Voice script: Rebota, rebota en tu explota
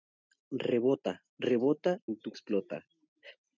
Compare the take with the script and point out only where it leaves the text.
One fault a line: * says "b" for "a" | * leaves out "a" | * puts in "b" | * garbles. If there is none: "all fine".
all fine